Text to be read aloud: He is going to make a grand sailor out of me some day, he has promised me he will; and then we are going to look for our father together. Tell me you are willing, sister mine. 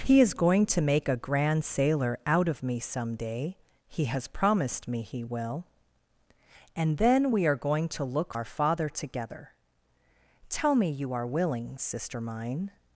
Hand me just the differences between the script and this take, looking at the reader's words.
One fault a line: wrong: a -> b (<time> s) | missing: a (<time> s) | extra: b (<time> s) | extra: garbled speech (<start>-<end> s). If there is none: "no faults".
missing: for (8.3 s)